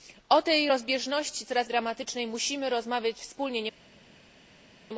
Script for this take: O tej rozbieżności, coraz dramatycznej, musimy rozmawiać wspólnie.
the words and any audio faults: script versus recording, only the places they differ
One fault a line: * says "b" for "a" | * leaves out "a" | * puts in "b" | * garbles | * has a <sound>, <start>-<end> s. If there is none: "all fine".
all fine